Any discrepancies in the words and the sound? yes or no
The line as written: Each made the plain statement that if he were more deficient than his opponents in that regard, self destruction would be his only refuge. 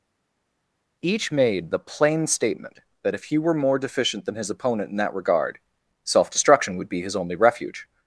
yes